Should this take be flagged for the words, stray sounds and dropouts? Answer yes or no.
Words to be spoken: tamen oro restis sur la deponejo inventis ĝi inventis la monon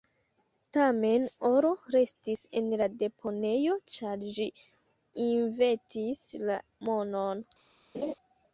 yes